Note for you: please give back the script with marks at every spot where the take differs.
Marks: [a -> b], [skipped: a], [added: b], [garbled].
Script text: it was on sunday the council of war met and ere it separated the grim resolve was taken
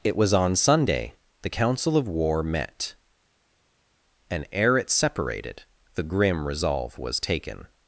it was on sunday the council of war met and ere it separated the grim resolve was taken